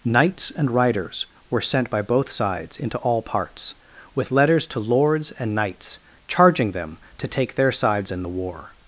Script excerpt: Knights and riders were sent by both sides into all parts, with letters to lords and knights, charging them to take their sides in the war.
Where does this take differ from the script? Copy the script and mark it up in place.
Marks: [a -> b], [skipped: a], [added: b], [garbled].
Knights and riders were sent by both sides into all parts, with letters to lords and knights, charging them to take their sides in the war.